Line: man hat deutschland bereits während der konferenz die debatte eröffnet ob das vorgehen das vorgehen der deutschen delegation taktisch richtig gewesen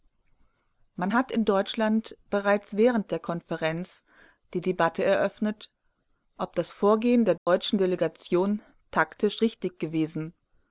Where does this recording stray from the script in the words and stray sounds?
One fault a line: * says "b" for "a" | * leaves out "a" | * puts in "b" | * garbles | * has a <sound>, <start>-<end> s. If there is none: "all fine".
* puts in "in"
* leaves out "das vorgehen"
* has a dropout, 7.4-7.5 s